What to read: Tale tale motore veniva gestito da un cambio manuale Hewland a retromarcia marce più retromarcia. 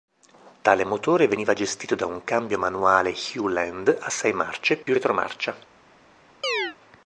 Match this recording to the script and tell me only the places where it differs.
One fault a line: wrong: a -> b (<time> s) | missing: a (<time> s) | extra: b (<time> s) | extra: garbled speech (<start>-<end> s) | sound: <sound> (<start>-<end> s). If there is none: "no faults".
missing: tale (0.8 s)
wrong: retromarcia -> sei (4.1 s)
sound: dropout (4.8-4.9 s)
sound: chirp (6.4-6.8 s)